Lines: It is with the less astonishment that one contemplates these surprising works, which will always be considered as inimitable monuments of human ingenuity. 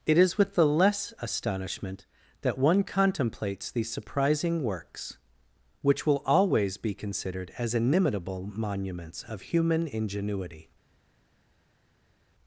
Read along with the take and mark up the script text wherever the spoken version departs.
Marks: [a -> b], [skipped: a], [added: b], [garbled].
It is with the less astonishment that one contemplates these surprising works, which will always be considered as inimitable monuments of human ingenuity.